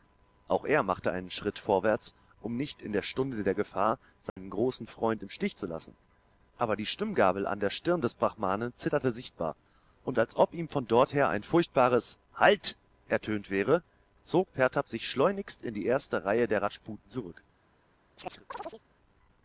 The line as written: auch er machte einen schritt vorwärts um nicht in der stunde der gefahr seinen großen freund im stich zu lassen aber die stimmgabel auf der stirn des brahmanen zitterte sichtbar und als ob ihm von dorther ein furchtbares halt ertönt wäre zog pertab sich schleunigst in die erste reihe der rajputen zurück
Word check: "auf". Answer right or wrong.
wrong